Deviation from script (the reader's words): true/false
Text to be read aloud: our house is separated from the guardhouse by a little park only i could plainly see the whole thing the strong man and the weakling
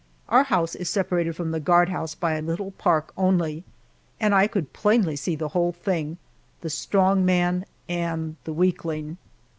true